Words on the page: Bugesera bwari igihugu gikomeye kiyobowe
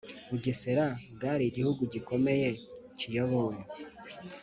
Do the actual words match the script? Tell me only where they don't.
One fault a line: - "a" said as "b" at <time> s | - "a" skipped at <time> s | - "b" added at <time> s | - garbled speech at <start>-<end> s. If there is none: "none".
none